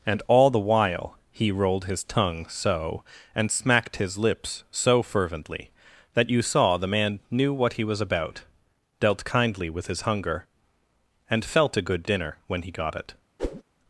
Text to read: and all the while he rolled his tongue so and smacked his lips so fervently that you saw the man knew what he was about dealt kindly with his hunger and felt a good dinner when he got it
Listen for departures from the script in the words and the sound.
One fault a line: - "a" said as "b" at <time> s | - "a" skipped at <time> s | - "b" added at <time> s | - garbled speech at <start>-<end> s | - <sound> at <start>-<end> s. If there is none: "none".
- whoosh at 13.4-13.6 s